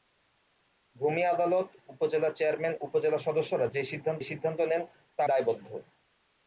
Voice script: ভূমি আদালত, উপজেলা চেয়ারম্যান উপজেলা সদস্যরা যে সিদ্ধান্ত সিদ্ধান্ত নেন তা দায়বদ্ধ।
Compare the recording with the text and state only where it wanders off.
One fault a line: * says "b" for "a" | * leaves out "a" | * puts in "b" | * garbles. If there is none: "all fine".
all fine